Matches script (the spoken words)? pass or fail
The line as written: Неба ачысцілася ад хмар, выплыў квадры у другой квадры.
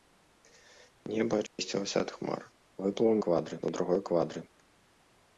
pass